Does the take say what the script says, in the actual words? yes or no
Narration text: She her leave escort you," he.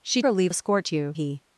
yes